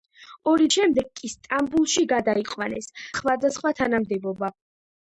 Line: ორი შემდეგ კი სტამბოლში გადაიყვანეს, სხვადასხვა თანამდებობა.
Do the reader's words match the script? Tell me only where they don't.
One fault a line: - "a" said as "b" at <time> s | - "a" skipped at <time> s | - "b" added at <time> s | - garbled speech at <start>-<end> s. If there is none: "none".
none